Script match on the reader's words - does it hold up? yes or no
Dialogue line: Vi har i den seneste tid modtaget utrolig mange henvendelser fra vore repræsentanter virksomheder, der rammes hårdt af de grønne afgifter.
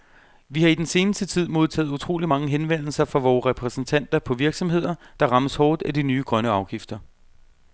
no